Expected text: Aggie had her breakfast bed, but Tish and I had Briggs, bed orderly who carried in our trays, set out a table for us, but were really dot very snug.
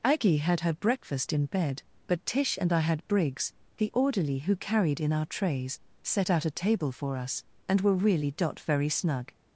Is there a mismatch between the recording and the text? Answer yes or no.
yes